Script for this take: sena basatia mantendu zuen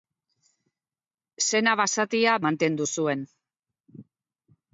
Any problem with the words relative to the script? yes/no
no